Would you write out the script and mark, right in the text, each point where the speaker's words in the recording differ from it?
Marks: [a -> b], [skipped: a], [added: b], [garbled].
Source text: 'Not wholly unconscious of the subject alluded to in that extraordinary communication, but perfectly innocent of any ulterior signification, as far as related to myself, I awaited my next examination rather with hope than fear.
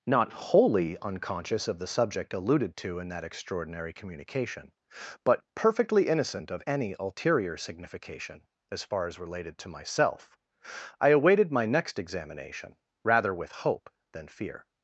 'Not wholly unconscious of the subject alluded to in that extraordinary communication, but perfectly innocent of any ulterior signification, as far as related to myself, I awaited my next examination rather with hope than fear.